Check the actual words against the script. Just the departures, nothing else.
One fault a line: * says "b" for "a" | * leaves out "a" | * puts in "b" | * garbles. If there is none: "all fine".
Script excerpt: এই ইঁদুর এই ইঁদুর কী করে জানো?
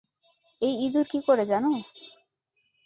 * leaves out "এই ইঁদুর"